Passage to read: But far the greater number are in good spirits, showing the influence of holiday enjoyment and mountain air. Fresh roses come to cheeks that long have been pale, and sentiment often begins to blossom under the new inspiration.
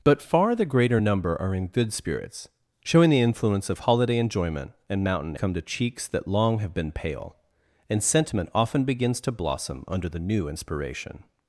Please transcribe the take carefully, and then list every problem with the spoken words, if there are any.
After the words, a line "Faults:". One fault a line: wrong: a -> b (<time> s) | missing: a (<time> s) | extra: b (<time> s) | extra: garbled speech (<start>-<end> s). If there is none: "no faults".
But far the greater number are in good spirits, showing the influence of holiday enjoyment and mountain come to cheeks that long have been pale, and sentiment often begins to blossom under the new inspiration.
Faults:
missing: air Fresh roses (5.3 s)